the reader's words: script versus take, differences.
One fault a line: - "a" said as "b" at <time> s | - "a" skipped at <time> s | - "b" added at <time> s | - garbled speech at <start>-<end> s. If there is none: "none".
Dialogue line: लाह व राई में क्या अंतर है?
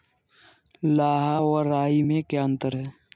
none